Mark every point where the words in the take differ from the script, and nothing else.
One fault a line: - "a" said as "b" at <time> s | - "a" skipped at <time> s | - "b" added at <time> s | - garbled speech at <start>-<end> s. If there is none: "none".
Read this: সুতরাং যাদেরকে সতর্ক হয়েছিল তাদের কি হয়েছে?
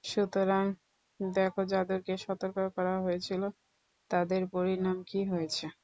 - "দেখ" added at 1.2 s
- "করা" added at 2.8 s
- "পরিণাম" added at 4.5 s